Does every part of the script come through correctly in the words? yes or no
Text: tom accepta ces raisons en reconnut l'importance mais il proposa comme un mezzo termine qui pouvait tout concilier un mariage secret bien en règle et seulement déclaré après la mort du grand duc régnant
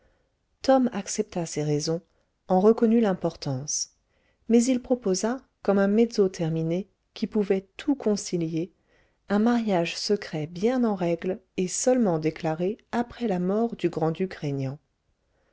yes